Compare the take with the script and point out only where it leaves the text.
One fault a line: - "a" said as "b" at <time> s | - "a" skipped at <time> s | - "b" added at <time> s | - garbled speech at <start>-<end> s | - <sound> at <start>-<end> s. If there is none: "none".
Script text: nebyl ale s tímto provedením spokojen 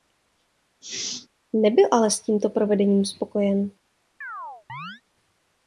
- sneeze at 0.8-1.3 s
- chirp at 4.2-5.0 s